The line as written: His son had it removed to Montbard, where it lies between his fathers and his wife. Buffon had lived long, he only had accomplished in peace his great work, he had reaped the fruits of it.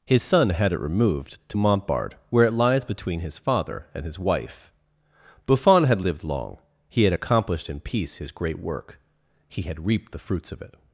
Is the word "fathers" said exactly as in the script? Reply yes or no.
no